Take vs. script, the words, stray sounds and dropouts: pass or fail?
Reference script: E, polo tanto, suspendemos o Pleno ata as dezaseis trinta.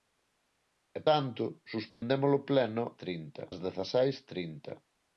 fail